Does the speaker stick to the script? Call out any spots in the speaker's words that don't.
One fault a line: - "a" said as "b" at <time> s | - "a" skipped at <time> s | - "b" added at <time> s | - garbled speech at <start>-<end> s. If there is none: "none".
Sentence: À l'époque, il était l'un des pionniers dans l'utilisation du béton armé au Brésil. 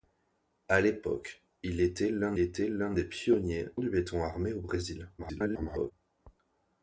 - "était l'un" added at 2.4 s
- "dans l'utilisation" skipped at 3.7 s
- garbled speech at 5.2-5.9 s